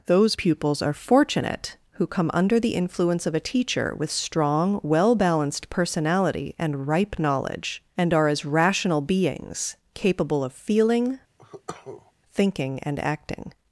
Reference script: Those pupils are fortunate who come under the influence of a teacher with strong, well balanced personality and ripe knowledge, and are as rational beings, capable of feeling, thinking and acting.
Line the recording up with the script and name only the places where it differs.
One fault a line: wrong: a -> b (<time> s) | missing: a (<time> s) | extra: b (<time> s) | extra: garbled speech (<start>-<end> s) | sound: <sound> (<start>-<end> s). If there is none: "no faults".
sound: cough (11.4-12.1 s)